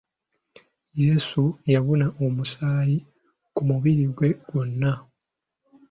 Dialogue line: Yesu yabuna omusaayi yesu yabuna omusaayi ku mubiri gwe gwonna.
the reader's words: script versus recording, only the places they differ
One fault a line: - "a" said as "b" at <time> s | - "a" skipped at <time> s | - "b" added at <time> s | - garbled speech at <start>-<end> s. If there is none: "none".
- "yesu yabuna omusaayi" skipped at 3.0 s